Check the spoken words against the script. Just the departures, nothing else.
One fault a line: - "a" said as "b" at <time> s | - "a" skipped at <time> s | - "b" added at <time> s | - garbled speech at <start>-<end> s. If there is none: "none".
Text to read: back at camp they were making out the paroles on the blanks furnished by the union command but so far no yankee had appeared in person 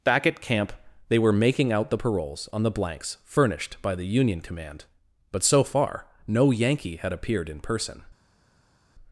none